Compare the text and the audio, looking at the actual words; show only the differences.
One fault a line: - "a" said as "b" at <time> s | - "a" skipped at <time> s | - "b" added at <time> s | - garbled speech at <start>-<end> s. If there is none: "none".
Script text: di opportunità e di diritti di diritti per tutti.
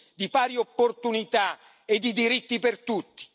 - "pari" added at 0.3 s
- "di diritti" skipped at 2.6 s